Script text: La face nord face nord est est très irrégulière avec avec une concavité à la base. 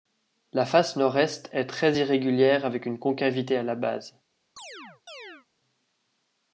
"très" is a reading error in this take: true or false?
false